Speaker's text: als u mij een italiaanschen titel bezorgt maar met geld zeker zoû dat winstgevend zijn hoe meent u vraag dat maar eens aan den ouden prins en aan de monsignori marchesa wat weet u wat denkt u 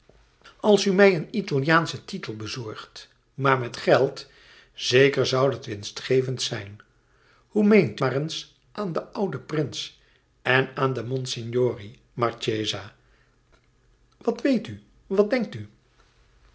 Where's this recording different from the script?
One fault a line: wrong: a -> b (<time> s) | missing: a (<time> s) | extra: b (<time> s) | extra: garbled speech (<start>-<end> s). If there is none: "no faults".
missing: u vraag dat (8.0 s)